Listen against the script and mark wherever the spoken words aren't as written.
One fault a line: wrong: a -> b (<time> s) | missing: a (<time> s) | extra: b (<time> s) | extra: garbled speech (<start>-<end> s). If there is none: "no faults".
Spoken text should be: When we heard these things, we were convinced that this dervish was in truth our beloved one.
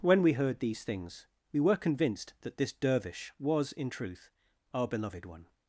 no faults